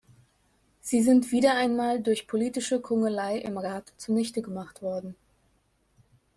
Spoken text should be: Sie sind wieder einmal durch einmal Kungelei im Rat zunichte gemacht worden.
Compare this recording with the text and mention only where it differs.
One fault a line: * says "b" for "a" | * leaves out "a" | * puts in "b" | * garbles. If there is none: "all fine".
* says "politische" for "einmal"